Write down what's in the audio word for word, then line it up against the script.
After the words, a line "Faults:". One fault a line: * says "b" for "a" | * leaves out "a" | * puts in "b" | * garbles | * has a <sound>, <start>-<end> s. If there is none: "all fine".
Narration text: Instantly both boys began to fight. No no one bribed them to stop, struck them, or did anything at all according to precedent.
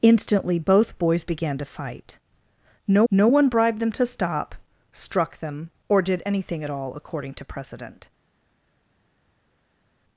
Instantly both boys began to fight. No no one bribed them to stop, struck them, or did anything at all according to precedent.
Faults:
all fine